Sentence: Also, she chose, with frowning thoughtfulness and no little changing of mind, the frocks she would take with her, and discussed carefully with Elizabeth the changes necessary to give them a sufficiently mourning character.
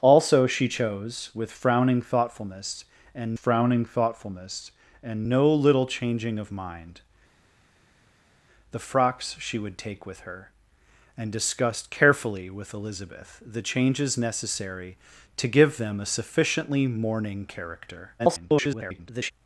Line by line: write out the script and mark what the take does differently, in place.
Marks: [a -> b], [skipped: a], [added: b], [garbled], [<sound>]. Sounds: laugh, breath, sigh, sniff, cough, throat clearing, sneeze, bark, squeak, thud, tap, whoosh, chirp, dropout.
Also, she chose, with frowning thoughtfulness and [added: frowning thoughtfulness and] no little changing of mind, the frocks she would take with her, and discussed carefully with Elizabeth the changes necessary to give them a sufficiently mourning character. [garbled]